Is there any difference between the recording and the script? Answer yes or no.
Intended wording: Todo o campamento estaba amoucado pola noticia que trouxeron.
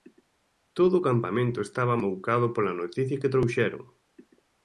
no